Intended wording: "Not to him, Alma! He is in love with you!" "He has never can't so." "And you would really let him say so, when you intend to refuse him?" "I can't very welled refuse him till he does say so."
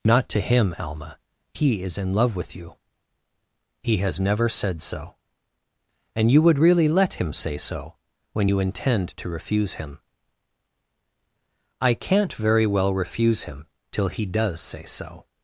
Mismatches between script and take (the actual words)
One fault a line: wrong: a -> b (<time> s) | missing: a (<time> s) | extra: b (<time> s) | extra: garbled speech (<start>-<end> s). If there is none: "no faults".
wrong: can't -> said (4.5 s)
wrong: welled -> well (12.7 s)